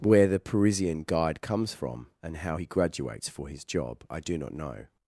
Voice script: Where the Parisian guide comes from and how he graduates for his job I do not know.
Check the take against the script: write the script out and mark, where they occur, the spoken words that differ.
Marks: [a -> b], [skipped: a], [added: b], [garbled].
Where the Parisian guide comes from and how he graduates for his job I do not know.